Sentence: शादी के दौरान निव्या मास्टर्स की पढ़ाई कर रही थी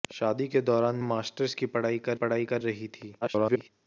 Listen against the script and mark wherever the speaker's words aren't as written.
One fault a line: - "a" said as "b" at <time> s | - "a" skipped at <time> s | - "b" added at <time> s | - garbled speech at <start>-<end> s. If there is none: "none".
- "निव्या" skipped at 1.0 s
- "पढ़ाई कर" added at 2.1 s
- garbled speech at 3.2-3.7 s